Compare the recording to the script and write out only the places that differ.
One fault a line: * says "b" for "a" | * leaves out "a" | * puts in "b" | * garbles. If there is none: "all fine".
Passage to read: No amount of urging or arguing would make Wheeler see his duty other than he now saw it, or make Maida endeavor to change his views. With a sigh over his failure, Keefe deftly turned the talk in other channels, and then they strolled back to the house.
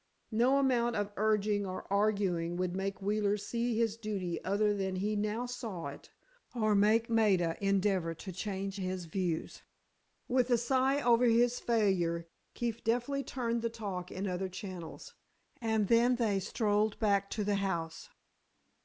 all fine